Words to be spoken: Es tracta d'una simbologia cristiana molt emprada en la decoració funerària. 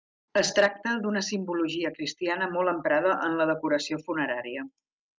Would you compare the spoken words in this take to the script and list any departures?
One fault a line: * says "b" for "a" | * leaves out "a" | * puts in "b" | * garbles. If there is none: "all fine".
all fine